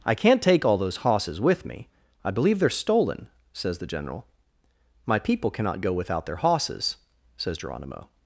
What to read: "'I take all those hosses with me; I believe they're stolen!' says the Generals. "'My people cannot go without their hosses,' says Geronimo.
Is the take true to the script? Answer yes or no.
no